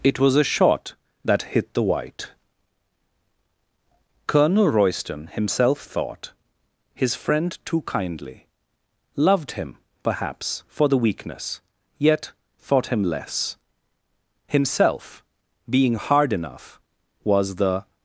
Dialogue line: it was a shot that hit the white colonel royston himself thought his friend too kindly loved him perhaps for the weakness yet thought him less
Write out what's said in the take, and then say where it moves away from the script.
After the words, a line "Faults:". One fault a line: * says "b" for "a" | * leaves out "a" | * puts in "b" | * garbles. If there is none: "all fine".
it was a shot that hit the white colonel royston himself thought his friend too kindly loved him perhaps for the weakness yet thought him less himself being hard enough was the
Faults:
* puts in "himself being hard enough was the"